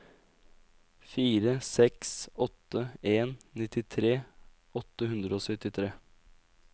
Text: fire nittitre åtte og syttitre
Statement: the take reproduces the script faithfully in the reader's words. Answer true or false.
false